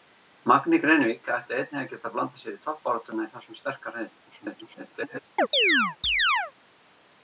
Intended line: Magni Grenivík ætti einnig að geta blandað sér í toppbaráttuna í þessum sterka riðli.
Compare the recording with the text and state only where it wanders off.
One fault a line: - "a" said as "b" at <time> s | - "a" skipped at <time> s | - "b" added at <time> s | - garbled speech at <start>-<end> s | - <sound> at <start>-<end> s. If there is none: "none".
- garbled speech at 4.3-5.2 s
- chirp at 5.4-6.5 s